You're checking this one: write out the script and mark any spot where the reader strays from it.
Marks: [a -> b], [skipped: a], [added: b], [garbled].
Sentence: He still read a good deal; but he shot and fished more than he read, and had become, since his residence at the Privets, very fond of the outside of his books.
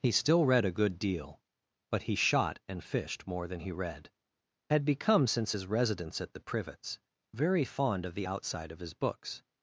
He still read a good deal; but he shot and fished more than he read, [skipped: and] had become, since his residence at the Privets, very fond of the outside of his books.